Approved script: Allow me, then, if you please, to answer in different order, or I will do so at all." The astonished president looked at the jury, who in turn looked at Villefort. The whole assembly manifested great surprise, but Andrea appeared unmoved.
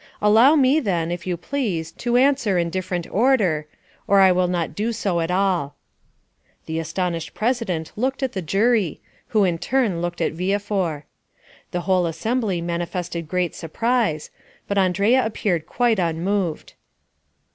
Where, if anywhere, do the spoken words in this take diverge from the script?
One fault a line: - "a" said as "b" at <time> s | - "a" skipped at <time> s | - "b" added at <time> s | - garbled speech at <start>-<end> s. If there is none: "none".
- "not" added at 4.5 s
- "quite" added at 15.7 s